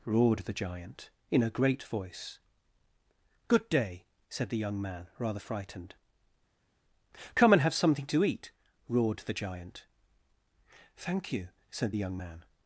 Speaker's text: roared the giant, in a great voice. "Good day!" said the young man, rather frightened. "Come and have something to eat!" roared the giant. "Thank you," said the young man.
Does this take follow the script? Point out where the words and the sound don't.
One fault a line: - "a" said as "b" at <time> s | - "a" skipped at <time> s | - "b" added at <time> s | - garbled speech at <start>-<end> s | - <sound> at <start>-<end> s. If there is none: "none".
none